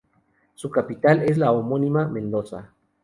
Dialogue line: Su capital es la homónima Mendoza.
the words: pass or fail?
pass